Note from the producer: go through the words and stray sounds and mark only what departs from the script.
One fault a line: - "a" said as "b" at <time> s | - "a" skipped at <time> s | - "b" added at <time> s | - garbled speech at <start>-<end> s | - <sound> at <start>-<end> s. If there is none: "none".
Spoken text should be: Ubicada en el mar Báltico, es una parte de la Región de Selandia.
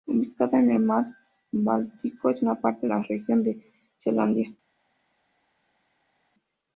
- "de" skipped at 2.9 s